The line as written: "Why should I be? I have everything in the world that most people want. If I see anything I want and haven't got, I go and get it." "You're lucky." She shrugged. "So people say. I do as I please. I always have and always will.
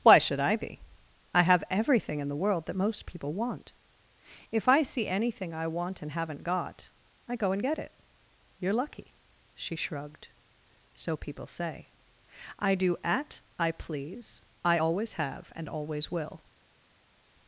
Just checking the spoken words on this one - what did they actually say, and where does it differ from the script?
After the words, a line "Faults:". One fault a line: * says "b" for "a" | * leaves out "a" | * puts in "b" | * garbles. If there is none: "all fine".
"Why should I be? I have everything in the world that most people want. If I see anything I want and haven't got, I go and get it." "You're lucky." She shrugged. "So people say. I do at I please. I always have and always will.
Faults:
* says "at" for "as"